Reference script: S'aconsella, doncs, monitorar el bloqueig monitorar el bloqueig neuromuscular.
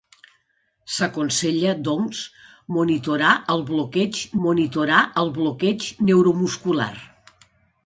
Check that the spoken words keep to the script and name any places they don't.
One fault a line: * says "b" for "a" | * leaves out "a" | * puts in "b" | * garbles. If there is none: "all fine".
all fine